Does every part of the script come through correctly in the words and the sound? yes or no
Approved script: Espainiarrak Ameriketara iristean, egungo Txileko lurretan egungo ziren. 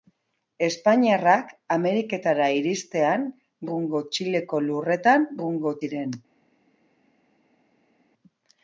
yes